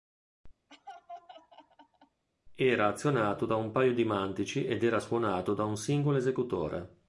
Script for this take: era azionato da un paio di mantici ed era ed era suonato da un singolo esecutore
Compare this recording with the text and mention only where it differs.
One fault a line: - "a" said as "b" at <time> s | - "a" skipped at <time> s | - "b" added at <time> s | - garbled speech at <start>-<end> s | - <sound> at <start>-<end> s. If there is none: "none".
- laugh at 0.7-2.2 s
- "ed era" skipped at 5.0 s